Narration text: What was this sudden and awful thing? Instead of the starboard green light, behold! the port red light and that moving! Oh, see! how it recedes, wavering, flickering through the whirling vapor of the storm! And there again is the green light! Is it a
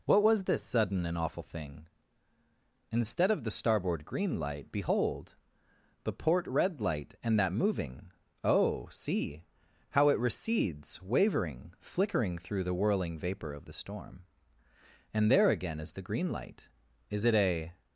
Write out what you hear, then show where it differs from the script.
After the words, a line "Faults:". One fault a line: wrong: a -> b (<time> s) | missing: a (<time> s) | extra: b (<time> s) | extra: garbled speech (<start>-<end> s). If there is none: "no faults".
What was this sudden and awful thing? Instead of the starboard green light, behold! the port red light and that moving! Oh, see! how it recedes, wavering, flickering through the whirling vapor of the storm! And there again is the green light! Is it a
Faults:
no faults